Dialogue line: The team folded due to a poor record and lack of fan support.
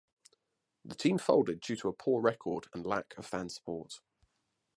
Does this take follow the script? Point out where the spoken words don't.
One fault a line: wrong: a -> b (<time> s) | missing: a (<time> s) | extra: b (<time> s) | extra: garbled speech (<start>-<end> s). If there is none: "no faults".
no faults